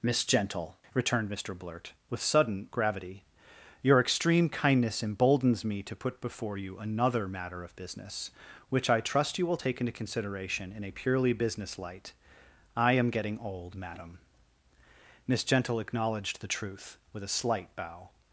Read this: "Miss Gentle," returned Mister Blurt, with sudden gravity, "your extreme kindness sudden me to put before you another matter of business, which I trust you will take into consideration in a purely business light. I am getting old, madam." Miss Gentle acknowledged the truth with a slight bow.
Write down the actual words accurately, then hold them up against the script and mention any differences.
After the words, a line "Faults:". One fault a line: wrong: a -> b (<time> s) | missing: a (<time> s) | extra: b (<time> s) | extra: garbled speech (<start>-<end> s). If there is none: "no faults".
"Miss Gentle," returned Mister Blurt, with sudden gravity, "your extreme kindness emboldens me to put before you another matter of business, which I trust you will take into consideration in a purely business light. I am getting old, madam." Miss Gentle acknowledged the truth with a slight bow.
Faults:
wrong: sudden -> emboldens (5.0 s)